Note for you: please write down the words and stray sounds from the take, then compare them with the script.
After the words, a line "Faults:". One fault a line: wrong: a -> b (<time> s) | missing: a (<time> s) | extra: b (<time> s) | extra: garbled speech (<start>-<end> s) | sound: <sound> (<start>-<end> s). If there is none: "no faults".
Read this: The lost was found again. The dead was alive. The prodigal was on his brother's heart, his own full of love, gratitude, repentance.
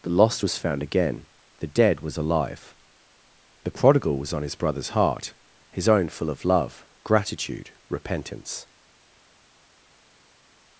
The lost was found again. The dead was alive. The prodigal was on his brother's heart, his own full of love, gratitude, repentance.
Faults:
no faults